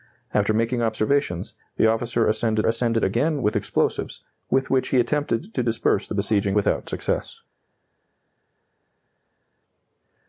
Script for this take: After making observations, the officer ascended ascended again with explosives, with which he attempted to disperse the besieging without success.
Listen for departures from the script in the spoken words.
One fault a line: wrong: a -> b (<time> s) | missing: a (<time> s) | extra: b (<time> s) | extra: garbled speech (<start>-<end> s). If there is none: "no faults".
no faults